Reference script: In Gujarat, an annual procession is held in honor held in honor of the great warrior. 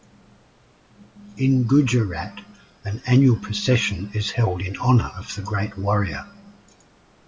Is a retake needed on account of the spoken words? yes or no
yes